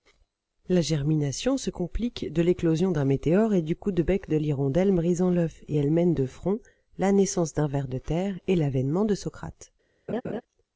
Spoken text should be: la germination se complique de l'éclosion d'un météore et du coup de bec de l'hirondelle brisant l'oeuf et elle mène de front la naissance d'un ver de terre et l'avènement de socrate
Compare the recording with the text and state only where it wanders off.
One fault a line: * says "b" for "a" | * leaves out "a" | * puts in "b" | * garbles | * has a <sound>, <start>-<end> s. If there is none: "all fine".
* has a laugh, 10.1-10.4 s